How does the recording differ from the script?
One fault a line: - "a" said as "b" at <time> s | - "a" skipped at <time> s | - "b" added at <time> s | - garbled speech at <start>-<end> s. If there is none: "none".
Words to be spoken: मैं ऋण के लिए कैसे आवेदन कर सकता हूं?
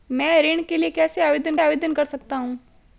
- "आवेदन" added at 1.6 s